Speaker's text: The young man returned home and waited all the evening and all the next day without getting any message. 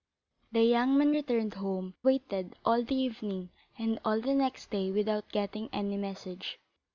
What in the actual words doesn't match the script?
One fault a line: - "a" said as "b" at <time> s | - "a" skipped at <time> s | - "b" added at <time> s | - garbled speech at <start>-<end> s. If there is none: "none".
- "and" skipped at 1.9 s